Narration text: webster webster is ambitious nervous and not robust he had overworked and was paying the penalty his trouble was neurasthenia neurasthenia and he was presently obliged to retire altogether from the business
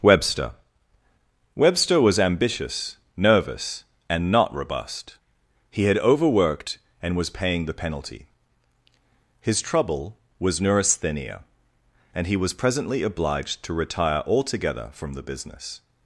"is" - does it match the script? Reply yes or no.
no